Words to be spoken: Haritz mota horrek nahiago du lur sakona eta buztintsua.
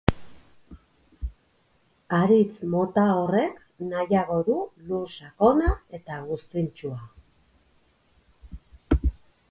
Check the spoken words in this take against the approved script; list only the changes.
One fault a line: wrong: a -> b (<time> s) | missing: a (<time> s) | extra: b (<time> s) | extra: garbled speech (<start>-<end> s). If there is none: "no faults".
no faults